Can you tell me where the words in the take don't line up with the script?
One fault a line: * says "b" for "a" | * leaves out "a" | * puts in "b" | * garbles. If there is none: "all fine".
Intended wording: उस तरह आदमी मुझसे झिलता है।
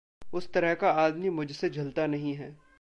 * puts in "का"
* puts in "नहीं"